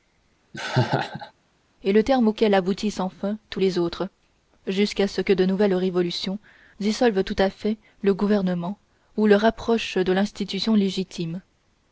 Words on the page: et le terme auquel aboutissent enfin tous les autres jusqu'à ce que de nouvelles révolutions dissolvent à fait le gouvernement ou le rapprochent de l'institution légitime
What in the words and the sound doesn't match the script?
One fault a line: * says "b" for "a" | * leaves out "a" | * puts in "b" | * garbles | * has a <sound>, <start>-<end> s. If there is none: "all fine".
* has a laugh, 0.5-1.3 s
* puts in "tout"